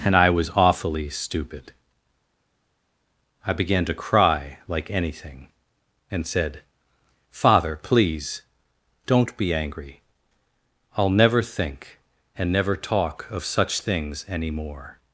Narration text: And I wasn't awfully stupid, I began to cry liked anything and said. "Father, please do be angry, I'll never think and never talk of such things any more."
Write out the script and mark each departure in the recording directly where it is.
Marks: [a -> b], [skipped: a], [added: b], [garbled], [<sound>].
And I [wasn't -> was] awfully stupid, I began to cry [liked -> like] anything and said. "Father, please [do -> don't] be angry, I'll never think and never talk of such things any more."